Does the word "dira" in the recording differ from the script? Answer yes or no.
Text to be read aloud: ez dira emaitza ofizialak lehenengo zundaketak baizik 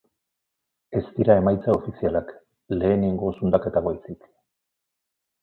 no